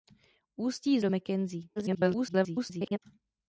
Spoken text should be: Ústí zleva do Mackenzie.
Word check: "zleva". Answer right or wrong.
wrong